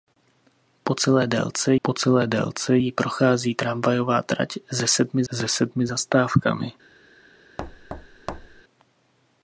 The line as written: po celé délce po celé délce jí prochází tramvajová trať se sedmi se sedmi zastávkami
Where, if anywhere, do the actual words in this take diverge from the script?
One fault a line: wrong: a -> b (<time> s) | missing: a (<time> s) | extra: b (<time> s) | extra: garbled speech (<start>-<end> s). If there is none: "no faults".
no faults